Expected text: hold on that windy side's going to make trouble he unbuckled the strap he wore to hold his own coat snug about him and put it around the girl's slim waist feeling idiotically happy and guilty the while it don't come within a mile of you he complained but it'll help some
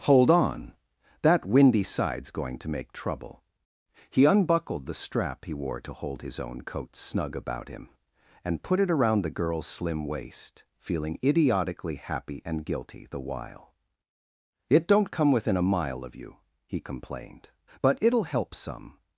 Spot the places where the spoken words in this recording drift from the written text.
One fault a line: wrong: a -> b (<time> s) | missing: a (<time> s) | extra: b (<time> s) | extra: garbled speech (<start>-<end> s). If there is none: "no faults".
no faults